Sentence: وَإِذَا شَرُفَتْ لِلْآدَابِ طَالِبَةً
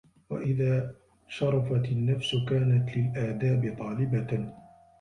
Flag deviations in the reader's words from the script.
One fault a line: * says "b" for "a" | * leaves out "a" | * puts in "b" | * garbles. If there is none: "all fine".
* puts in "النَّفْسُ كَانَتْ"